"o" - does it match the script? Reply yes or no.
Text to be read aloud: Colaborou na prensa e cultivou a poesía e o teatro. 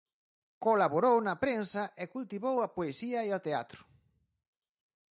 yes